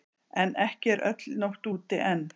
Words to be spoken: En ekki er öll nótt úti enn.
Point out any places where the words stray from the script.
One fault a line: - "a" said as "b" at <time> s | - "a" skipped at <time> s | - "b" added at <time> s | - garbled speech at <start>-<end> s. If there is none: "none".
none